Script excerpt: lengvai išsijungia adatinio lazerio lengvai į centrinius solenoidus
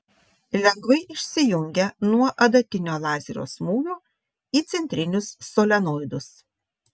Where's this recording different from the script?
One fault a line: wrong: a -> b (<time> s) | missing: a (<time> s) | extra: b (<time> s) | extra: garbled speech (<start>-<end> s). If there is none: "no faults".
extra: nuo (2.1 s)
wrong: lengvai -> smūgio (3.5 s)